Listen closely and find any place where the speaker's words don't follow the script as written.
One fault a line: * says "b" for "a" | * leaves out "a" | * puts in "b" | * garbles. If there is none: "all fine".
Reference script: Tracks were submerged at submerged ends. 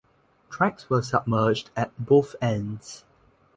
* says "both" for "submerged"